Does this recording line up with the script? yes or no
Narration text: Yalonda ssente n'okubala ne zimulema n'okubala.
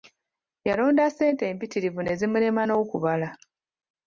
no